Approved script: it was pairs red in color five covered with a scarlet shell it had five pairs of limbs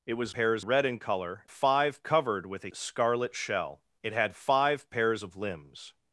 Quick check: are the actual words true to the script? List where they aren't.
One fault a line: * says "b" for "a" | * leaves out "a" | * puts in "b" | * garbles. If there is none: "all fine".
all fine